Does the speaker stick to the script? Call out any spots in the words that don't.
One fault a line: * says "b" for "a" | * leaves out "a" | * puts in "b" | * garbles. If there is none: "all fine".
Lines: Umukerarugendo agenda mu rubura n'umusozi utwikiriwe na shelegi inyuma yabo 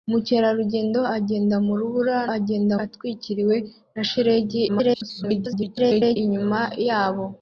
* says "agenda" for "n'umusozi"
* garbles